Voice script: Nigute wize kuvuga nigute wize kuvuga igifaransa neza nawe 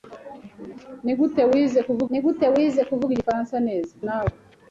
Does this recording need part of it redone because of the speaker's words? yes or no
no